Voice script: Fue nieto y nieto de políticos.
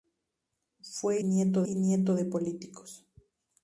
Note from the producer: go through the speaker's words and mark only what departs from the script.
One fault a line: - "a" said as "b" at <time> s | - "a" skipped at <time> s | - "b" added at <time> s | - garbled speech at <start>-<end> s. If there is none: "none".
none